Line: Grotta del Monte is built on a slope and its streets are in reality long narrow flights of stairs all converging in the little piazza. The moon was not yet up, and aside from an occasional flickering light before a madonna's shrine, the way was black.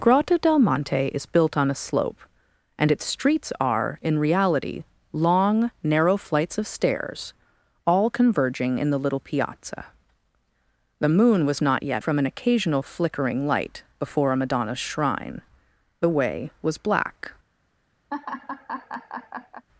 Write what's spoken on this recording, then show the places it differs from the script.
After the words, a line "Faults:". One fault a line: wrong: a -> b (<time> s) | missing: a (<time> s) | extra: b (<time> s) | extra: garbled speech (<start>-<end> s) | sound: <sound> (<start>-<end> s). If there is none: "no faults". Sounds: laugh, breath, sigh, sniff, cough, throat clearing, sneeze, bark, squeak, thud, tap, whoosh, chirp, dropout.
Grotta del Monte is built on a slope and its streets are in reality long narrow flights of stairs all converging in the little piazza. The moon was not yet from an occasional flickering light before a madonna's shrine, the way was black.
Faults:
missing: up and aside (12.0 s)
sound: laugh (18.1-19.6 s)